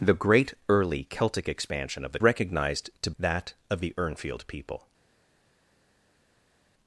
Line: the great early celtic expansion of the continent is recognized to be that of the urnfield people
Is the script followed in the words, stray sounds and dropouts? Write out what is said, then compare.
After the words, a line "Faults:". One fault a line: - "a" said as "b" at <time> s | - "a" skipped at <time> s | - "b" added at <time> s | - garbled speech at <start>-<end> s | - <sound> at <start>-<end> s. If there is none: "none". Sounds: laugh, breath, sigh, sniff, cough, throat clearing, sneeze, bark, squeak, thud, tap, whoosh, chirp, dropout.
the great early celtic expansion of the recognized to that of the urnfield people
Faults:
- "continent is" skipped at 2.2 s
- "be" skipped at 3.1 s